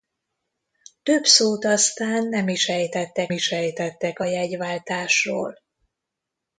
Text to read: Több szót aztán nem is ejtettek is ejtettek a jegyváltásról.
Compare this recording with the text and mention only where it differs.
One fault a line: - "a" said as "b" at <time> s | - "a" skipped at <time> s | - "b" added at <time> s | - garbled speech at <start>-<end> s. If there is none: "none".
none